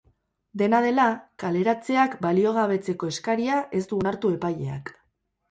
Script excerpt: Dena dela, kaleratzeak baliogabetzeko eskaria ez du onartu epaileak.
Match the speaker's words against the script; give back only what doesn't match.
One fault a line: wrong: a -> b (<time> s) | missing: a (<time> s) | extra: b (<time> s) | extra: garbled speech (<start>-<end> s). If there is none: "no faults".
no faults